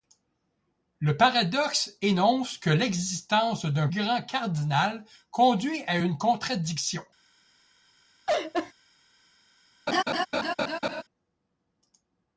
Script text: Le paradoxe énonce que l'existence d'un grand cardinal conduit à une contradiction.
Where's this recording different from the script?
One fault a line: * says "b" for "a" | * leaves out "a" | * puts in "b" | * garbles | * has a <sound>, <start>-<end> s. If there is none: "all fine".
* has a laugh, 8.3-8.7 s
* has a laugh, 9.9-11.0 s